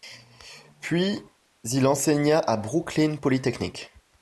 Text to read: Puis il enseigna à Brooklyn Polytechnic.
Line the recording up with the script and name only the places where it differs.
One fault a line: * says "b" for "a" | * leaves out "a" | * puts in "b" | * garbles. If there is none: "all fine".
all fine